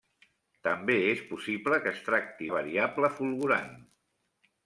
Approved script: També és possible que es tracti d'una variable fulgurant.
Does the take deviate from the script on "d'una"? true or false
true